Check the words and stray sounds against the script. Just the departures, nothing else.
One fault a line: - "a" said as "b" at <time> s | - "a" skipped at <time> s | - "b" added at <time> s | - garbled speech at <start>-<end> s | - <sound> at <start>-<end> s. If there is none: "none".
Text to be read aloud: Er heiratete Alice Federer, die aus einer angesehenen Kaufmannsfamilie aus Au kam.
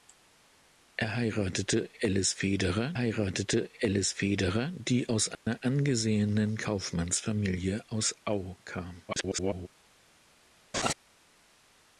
- "heiratete Alice Federer" added at 3.0 s
- dropout at 5.3-5.5 s
- garbled speech at 9.1-9.7 s
- laugh at 10.7-10.9 s